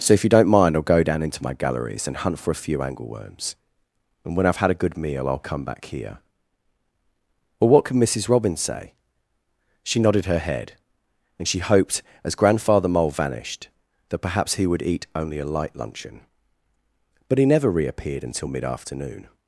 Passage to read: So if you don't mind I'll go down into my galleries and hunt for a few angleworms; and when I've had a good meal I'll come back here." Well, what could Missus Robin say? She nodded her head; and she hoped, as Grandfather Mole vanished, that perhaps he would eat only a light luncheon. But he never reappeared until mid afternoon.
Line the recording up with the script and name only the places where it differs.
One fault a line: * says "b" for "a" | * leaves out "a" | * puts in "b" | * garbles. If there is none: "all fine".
all fine